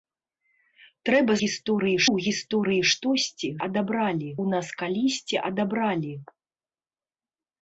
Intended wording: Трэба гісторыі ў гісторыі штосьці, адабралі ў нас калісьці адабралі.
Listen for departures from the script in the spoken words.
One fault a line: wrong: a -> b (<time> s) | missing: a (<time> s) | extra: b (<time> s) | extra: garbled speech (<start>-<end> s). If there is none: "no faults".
no faults